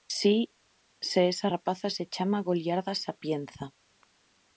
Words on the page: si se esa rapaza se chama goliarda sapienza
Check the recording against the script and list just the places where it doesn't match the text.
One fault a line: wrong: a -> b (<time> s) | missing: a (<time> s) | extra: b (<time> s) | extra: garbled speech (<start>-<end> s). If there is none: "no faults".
no faults